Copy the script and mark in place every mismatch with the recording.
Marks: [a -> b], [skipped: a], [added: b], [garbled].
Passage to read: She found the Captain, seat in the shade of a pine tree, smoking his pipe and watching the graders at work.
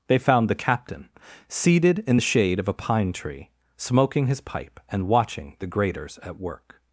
[She -> They] found the Captain, [seat -> seated] in the shade of a pine tree, smoking his pipe and watching the graders at work.